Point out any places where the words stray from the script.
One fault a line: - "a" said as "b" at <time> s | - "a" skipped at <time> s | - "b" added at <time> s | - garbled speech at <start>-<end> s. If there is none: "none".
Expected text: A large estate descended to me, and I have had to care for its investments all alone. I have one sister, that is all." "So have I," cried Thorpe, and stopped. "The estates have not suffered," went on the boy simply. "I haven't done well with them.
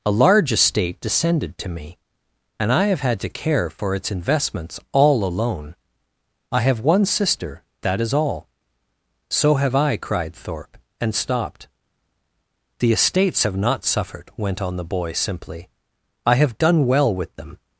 - "haven't" said as "have" at 16.4 s